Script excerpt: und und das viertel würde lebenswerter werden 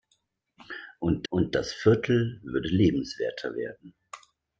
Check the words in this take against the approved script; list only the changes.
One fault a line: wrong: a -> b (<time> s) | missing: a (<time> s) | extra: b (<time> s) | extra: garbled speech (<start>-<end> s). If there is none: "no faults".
no faults